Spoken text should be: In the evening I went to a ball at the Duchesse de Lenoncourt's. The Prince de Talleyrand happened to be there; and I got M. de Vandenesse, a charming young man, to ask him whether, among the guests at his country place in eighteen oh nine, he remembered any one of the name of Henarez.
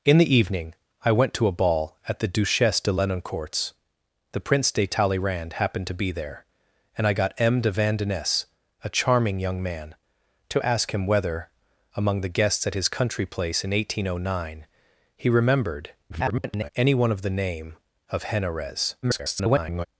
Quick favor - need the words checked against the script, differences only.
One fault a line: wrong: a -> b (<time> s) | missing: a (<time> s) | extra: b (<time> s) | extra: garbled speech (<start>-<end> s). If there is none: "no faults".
extra: garbled speech (16.1-16.7 s)
extra: garbled speech (19.0-19.9 s)